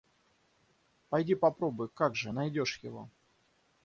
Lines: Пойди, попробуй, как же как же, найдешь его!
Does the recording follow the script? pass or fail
fail